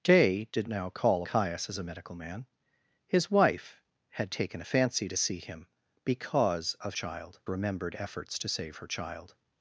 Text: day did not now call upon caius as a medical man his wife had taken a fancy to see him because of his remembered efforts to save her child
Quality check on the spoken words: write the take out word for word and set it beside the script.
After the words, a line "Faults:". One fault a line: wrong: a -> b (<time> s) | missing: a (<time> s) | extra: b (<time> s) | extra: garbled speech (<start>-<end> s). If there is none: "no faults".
day did now call caius as a medical man his wife had taken a fancy to see him because of child remembered efforts to save her child
Faults:
missing: not (0.7 s)
missing: upon (1.2 s)
wrong: his -> child (6.9 s)